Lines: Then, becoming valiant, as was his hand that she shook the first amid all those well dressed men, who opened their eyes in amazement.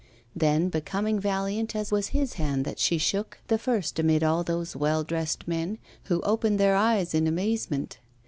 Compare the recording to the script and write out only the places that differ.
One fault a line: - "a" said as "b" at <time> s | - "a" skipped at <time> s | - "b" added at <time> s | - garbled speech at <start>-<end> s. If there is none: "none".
none